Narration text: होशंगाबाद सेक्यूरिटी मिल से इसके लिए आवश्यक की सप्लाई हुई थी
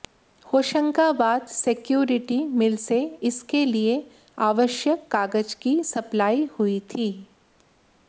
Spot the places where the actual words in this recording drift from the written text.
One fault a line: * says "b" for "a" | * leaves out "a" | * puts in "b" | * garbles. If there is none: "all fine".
* puts in "कागज"